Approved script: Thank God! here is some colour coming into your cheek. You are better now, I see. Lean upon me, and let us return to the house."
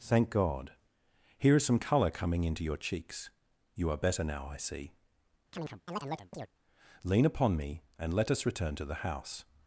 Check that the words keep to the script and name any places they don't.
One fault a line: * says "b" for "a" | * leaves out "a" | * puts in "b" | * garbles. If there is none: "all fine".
* says "cheeks" for "cheek"